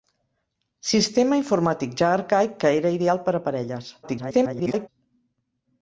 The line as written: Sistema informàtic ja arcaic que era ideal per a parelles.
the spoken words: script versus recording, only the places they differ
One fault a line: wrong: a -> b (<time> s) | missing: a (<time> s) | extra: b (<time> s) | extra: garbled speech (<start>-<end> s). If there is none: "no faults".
extra: garbled speech (4.0-4.9 s)